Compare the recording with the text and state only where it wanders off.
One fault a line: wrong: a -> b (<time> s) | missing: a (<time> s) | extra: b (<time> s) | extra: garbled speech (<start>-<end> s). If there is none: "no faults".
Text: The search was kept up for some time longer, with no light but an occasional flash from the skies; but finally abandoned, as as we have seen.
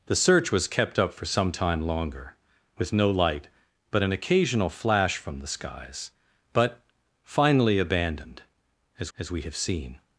no faults